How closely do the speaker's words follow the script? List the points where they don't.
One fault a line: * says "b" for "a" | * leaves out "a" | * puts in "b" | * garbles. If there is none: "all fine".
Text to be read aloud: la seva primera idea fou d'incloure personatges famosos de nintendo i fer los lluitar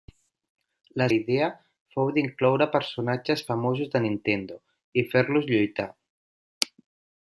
* leaves out "seva primera"